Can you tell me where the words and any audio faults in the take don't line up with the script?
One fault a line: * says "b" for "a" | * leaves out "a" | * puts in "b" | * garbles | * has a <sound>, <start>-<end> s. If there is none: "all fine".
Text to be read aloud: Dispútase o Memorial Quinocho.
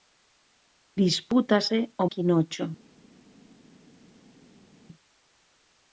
* leaves out "Memorial"